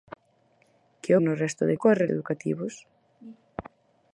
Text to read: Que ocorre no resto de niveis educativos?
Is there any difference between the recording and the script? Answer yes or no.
yes